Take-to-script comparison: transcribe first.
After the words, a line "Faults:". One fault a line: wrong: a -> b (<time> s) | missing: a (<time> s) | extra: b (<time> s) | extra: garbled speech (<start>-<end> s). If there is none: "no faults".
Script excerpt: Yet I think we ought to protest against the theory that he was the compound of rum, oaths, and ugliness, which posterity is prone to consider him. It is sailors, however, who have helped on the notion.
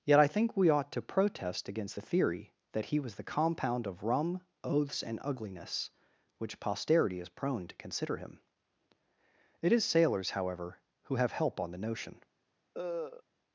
Yet I think we ought to protest against the theory that he was the compound of rum, oaths, and ugliness, which posterity is prone to consider him. It is sailors, however, who have help on the notion.
Faults:
wrong: helped -> help (11.3 s)